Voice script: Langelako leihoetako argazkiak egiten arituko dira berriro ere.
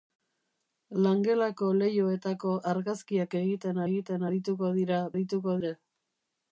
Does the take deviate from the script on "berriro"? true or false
true